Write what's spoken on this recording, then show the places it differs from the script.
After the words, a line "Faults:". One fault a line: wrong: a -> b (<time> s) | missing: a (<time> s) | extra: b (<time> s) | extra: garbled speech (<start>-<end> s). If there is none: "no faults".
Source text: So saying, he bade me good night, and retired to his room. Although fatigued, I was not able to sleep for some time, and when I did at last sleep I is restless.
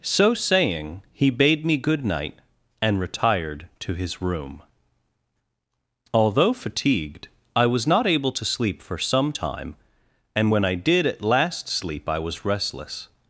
So saying, he bade me good night, and retired to his room. Although fatigued, I was not able to sleep for some time, and when I did at last sleep I was restless.
Faults:
wrong: is -> was (12.2 s)